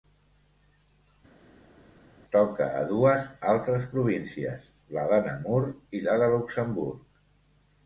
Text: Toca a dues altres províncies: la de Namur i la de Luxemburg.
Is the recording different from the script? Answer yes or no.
no